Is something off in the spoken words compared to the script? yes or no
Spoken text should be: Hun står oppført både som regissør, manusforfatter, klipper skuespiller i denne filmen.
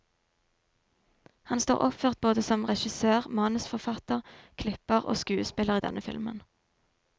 yes